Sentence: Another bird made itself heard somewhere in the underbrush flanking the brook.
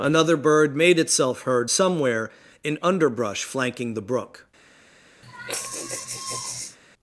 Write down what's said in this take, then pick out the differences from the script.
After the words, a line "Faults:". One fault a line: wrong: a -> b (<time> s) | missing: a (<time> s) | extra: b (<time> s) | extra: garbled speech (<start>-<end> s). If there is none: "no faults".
Another bird made itself heard somewhere in underbrush flanking the brook.
Faults:
missing: the (2.8 s)